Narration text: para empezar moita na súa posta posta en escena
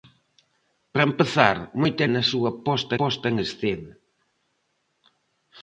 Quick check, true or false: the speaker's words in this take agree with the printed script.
true